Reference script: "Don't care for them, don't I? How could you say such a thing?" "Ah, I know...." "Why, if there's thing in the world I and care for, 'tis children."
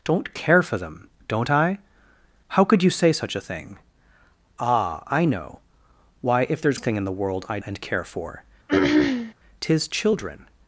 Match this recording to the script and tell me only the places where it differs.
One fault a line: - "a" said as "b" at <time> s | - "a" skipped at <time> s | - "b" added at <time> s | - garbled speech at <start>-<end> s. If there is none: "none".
none